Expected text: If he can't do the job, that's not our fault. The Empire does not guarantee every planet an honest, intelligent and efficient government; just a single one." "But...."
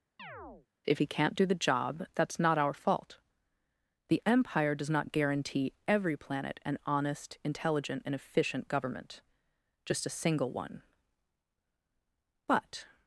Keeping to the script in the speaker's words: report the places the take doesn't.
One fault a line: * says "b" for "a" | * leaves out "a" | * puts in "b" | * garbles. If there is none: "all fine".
all fine